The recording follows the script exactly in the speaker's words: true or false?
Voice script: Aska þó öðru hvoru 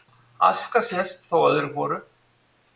false